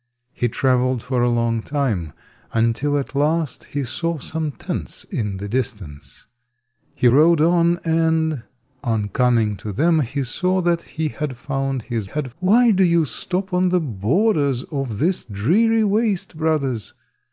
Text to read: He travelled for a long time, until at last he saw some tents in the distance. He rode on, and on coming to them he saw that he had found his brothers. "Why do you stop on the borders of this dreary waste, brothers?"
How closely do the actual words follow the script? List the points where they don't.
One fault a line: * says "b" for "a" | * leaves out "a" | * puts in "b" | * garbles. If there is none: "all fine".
* says "had" for "brothers"